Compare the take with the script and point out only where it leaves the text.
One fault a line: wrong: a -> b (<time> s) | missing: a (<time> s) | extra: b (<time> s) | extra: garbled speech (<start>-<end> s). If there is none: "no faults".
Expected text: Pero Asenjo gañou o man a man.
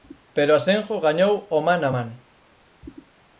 no faults